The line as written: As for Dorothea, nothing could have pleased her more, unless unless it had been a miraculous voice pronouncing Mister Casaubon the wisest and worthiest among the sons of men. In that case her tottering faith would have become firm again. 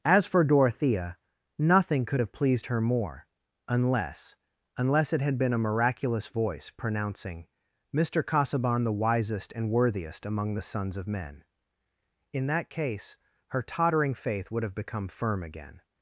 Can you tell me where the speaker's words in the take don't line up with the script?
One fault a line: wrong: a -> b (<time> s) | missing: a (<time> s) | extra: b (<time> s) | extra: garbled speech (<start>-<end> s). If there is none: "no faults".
no faults